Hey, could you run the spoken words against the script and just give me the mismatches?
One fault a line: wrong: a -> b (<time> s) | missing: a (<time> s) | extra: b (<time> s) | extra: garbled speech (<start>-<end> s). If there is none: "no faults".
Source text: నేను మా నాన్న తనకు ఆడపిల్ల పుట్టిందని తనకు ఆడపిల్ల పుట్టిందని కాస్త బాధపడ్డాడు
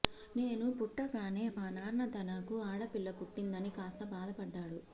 extra: పుట్టగానే (0.8 s)
missing: తనకు ఆడపిల్ల పుట్టిందని (3.7 s)